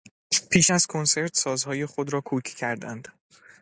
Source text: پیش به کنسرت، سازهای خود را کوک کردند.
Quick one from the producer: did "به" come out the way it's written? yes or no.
no